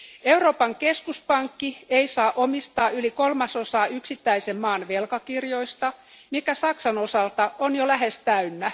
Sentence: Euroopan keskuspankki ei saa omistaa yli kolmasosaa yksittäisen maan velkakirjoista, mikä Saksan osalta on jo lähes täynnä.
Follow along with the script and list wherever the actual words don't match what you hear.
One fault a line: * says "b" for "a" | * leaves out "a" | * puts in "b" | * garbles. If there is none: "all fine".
all fine